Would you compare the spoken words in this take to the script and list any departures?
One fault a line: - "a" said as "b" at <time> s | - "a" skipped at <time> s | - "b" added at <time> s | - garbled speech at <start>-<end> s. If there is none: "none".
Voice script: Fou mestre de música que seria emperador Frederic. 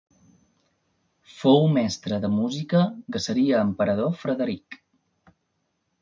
none